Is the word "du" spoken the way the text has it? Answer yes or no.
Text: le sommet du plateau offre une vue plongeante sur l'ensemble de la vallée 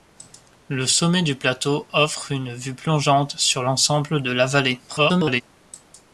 yes